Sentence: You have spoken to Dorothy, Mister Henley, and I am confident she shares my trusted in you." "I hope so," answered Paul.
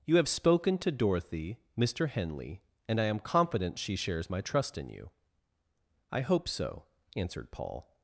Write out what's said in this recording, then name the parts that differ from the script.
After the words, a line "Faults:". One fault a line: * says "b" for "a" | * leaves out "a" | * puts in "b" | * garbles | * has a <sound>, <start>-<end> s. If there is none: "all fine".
You have spoken to Dorothy, Mister Henley, and I am confident she shares my trust in you." "I hope so," answered Paul.
Faults:
* says "trust" for "trusted"